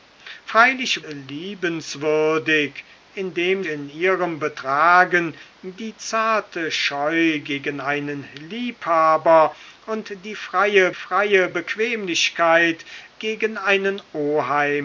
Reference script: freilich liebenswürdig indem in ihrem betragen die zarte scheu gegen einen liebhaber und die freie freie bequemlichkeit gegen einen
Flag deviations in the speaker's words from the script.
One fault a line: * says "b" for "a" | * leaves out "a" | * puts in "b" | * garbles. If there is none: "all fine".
all fine